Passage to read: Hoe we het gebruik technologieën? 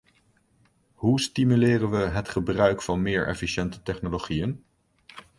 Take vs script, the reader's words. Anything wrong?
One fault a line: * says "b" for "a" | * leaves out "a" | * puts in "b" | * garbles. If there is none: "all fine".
* puts in "stimuleren"
* puts in "van meer efficiënte"